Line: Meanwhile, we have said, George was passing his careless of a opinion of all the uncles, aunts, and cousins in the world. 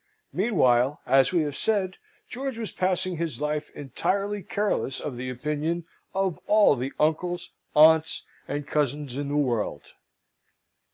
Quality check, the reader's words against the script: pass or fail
fail